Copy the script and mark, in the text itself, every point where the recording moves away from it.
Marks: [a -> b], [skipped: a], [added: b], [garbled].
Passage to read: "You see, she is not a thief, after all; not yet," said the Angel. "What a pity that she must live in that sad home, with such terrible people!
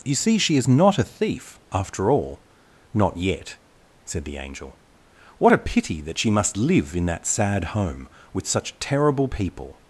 "You see, she is not a thief, after all; not yet," said the Angel. "What a pity that she must live in that sad home, with such terrible people!